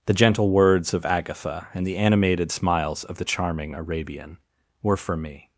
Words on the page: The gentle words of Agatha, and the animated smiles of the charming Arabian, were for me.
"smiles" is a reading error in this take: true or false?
false